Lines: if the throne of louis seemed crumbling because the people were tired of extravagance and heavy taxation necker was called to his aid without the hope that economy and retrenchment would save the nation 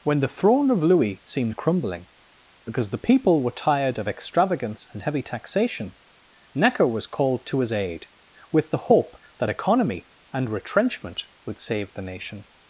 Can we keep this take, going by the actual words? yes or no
no